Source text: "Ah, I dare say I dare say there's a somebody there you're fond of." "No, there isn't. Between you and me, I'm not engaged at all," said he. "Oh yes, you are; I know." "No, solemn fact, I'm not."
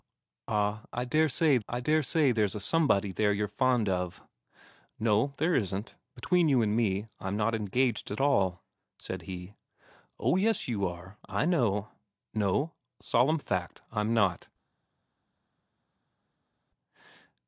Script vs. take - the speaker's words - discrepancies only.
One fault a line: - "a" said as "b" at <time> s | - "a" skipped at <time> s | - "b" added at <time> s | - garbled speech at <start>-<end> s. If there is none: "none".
none